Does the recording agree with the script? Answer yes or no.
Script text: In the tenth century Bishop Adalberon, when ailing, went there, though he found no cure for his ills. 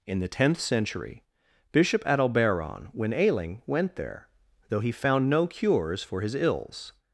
no